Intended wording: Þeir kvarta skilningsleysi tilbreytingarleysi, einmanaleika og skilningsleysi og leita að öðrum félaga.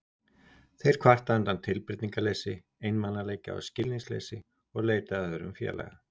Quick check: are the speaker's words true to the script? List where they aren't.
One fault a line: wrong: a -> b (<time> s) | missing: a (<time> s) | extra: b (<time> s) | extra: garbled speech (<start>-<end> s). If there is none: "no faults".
wrong: skilningsleysi -> undan (1.4 s)